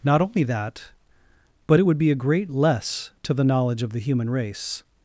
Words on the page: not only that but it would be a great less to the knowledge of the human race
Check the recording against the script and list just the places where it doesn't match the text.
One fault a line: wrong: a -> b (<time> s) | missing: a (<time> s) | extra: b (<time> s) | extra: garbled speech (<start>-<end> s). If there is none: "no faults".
no faults